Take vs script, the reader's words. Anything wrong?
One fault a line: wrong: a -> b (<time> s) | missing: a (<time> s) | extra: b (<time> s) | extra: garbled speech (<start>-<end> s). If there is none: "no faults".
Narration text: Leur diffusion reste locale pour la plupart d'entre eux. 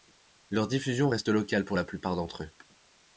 no faults